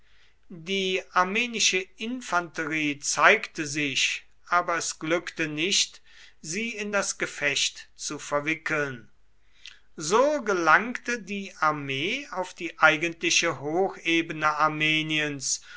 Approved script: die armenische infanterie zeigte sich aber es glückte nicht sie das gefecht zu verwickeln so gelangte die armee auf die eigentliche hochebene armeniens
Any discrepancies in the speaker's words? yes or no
yes